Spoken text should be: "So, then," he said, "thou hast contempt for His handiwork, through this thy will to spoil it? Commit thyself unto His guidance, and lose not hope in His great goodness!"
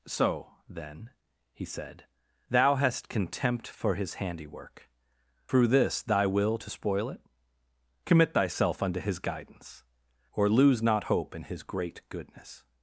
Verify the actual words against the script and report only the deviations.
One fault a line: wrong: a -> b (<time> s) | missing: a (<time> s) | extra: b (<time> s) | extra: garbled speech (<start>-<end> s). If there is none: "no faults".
wrong: and -> or (10.3 s)